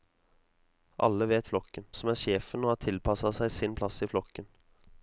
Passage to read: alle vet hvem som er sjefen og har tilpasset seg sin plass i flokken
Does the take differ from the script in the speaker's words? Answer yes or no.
yes